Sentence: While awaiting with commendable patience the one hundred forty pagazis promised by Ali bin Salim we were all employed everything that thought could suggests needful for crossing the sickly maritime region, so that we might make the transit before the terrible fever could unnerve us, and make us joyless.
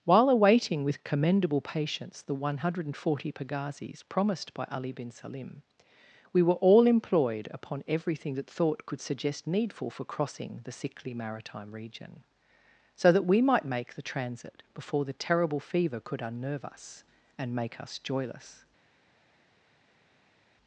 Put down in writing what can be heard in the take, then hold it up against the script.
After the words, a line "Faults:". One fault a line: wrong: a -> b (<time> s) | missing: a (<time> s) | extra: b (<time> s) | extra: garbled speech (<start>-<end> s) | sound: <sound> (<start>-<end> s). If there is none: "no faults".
While awaiting with commendable patience the one hundred forty pagazis promised by Ali bin Salim we were all employed upon everything that thought could suggest needful for crossing the sickly maritime region, so that we might make the transit before the terrible fever could unnerve us, and make us joyless.
Faults:
extra: upon (7.5 s)
wrong: suggests -> suggest (9.0 s)